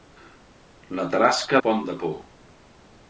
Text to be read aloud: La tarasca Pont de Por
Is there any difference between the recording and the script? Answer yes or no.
no